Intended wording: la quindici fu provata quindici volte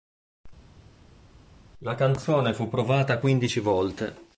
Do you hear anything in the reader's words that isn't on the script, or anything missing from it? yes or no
yes